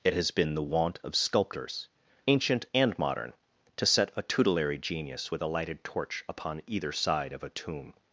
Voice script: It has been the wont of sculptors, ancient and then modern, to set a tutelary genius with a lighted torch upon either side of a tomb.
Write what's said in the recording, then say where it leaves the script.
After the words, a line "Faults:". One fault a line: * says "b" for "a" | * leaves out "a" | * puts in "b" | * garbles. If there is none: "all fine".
It has been the wont of sculptors, ancient and modern, to set a tutelary genius with a lighted torch upon either side of a tomb.
Faults:
* leaves out "then"